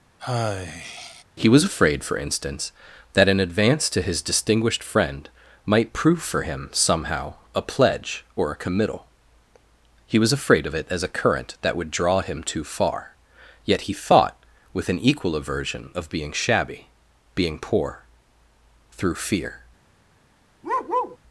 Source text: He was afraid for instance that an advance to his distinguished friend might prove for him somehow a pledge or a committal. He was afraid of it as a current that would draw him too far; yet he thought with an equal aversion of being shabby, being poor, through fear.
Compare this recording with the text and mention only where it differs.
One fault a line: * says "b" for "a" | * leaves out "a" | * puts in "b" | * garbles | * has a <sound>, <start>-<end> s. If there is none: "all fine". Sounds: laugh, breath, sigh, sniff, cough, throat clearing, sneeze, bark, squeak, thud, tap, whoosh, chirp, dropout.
* has a sigh, 0.2-1.2 s
* has a bark, 20.6-21.2 s